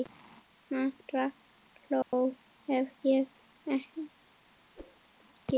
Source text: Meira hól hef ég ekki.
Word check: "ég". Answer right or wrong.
right